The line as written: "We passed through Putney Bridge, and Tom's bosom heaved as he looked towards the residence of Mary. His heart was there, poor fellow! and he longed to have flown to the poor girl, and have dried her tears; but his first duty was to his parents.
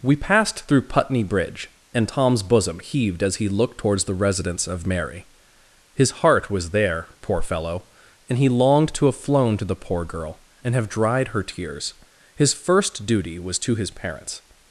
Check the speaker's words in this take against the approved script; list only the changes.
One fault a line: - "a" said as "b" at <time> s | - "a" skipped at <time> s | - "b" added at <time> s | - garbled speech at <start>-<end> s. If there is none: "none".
- "but" skipped at 11.9 s